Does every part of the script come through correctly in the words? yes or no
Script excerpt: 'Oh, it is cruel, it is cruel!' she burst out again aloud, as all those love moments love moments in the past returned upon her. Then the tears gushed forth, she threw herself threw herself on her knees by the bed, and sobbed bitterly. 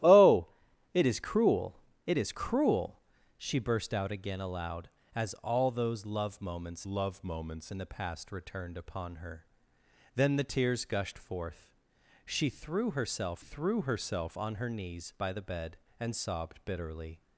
yes